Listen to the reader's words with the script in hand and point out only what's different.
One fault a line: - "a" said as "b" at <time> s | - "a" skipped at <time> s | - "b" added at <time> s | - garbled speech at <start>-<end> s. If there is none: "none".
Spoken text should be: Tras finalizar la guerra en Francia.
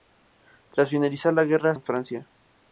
none